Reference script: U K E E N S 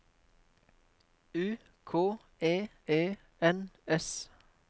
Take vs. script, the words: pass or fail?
pass